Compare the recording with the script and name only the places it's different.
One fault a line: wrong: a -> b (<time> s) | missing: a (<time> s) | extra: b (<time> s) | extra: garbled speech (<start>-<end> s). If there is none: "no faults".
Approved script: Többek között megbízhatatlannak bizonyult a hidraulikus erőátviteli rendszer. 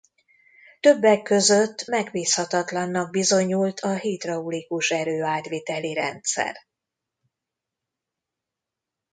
no faults